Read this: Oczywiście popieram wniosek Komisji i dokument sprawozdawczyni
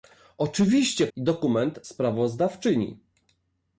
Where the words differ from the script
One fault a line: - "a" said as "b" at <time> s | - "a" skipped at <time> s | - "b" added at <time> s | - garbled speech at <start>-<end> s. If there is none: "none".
- "popieram wniosek Komisji" skipped at 1.1 s